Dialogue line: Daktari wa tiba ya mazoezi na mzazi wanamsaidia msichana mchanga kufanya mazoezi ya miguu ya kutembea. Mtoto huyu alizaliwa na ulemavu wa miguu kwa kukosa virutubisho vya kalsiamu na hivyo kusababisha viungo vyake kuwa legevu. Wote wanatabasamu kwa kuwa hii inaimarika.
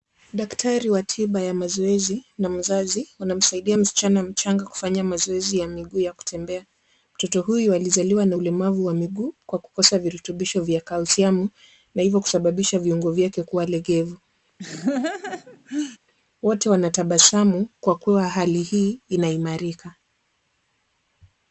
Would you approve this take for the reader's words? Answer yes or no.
no